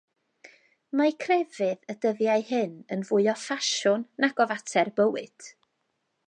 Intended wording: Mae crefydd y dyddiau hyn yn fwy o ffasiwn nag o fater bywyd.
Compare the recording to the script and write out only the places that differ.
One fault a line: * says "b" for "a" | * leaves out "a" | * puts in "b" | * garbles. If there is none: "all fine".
all fine